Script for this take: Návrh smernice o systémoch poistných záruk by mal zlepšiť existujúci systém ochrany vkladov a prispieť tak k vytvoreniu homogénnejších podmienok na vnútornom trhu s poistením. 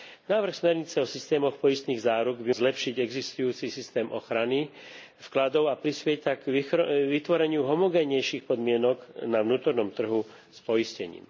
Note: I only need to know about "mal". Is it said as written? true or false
false